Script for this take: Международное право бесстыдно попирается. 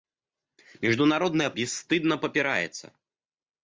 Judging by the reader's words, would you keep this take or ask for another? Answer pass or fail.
fail